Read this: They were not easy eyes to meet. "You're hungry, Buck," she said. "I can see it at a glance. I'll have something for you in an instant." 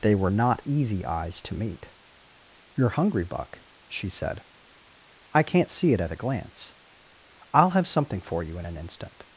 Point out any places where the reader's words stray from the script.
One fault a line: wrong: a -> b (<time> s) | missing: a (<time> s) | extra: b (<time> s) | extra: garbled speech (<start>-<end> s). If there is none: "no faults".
wrong: can -> can't (5.4 s)